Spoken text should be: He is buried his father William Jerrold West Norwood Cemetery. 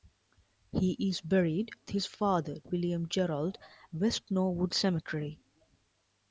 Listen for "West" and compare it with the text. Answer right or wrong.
right